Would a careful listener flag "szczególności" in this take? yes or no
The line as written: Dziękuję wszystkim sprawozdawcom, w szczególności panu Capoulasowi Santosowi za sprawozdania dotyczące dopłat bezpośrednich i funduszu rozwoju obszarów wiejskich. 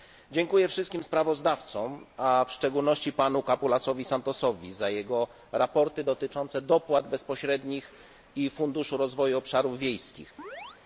no